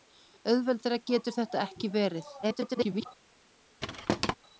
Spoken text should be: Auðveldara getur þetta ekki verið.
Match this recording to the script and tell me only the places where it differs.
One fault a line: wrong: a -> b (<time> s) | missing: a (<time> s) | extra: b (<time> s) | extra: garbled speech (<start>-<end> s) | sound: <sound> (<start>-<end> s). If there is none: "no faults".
extra: garbled speech (2.4-3.1 s)
sound: thud (3.8-4.3 s)